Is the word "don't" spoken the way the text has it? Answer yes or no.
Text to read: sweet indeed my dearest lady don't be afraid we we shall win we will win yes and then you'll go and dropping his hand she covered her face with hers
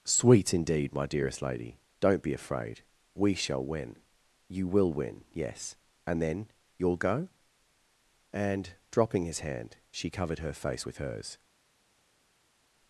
yes